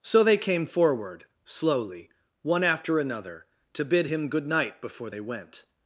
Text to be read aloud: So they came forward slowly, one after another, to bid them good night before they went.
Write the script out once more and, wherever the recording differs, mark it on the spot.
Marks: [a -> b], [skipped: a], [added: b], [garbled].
So they came forward slowly, one after another, to bid [them -> him] good night before they went.